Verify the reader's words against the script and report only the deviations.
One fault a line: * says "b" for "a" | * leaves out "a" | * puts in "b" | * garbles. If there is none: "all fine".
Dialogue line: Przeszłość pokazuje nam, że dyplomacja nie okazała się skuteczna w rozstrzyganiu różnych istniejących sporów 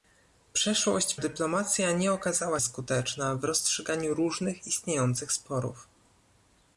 * leaves out "pokazuje nam że"
* leaves out "się"